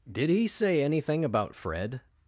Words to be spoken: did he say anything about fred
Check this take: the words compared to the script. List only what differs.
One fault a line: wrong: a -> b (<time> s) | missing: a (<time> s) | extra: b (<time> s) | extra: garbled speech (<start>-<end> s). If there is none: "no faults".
no faults